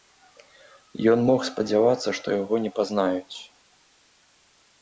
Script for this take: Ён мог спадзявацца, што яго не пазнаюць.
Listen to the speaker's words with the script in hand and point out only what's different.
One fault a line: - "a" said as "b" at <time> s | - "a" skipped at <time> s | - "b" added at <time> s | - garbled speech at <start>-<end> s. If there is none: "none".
none